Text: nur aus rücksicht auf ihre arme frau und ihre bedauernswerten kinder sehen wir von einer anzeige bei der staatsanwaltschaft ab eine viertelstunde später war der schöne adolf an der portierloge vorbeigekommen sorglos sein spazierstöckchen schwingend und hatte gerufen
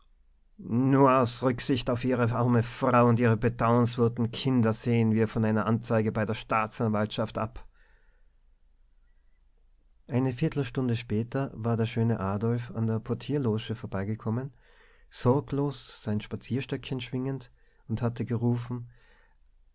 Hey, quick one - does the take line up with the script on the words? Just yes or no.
yes